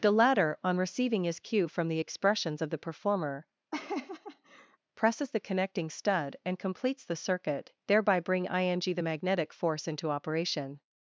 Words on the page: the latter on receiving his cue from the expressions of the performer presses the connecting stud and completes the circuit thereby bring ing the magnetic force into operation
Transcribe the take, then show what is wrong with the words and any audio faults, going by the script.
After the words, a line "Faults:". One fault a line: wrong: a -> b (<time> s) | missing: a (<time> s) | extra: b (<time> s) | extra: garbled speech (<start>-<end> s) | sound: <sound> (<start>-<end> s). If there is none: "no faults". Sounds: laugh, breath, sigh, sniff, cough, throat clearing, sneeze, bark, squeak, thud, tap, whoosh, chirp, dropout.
the latter on receiving his cue from the expressions of the performer presses the connecting stud and completes the circuit thereby bring ing the magnetic force into operation
Faults:
sound: laugh (3.7-4.8 s)